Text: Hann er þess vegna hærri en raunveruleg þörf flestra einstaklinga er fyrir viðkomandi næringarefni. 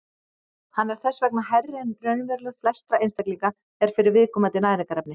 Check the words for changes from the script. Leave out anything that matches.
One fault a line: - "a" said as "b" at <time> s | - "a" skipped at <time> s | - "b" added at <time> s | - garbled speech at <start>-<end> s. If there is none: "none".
- "þörf" skipped at 2.6 s